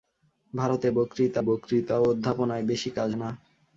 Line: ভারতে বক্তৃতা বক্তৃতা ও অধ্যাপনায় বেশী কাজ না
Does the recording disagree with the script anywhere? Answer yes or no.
no